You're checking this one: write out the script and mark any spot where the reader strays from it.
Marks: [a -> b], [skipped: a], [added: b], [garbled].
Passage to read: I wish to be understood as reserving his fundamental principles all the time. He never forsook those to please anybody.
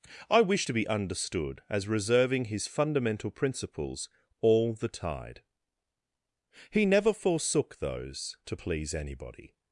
I wish to be understood as reserving his fundamental principles all the [time. -> tide] He never forsook those to please anybody.